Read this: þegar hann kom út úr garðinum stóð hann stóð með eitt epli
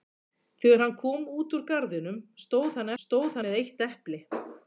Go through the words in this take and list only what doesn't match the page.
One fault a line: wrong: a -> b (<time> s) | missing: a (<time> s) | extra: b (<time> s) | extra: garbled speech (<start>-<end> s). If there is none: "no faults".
no faults